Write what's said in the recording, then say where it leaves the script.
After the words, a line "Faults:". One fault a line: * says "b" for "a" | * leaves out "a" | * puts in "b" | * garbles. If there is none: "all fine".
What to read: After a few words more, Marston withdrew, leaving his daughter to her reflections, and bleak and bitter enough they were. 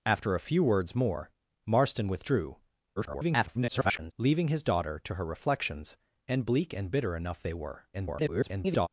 After a few words more, Marston withdrew, [garbled] leaving his daughter to her reflections, and bleak and bitter enough they were. [garbled]
Faults:
* garbles
* garbles